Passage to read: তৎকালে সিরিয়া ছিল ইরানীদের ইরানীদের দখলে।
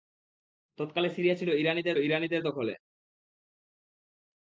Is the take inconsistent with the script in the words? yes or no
no